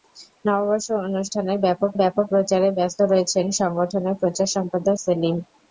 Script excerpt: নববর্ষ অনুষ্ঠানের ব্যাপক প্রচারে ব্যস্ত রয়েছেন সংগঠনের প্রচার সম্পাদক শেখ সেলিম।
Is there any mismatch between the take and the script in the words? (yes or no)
yes